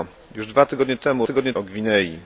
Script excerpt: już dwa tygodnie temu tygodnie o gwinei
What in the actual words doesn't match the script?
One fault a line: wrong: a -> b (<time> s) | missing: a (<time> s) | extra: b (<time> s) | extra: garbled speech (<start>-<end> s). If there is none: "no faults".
no faults